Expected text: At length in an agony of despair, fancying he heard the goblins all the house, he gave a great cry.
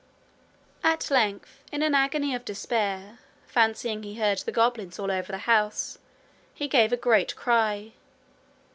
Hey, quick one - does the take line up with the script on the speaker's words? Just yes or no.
no